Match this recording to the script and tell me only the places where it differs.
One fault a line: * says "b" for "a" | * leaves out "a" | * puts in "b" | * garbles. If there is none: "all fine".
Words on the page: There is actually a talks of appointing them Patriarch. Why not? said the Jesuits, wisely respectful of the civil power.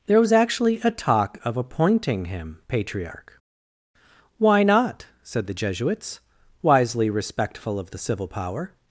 * says "was" for "is"
* says "talk" for "talks"
* says "him" for "them"